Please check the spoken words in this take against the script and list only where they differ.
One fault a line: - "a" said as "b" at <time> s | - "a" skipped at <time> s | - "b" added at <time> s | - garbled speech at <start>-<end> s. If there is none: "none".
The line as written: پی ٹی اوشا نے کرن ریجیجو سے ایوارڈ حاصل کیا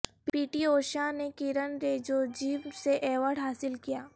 none